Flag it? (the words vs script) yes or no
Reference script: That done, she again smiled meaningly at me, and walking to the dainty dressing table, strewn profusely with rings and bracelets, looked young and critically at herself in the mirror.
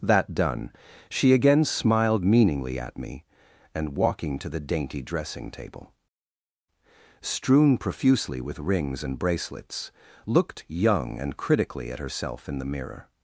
no